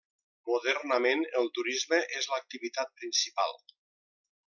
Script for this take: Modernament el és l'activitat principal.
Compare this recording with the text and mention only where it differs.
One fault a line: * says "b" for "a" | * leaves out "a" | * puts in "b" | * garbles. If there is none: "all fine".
* puts in "turisme"